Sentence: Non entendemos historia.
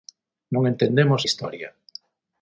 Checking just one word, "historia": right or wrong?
right